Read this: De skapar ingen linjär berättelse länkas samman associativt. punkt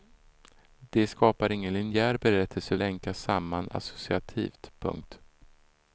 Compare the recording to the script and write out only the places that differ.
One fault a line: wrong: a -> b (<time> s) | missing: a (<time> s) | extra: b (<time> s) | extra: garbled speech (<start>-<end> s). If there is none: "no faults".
no faults